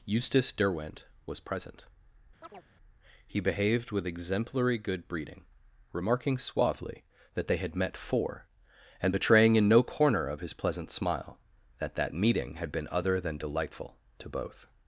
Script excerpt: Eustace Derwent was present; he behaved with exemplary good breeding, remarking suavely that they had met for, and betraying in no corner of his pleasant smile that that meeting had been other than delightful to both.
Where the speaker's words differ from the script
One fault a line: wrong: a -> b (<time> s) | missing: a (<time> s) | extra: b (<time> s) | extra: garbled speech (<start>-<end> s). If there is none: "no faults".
no faults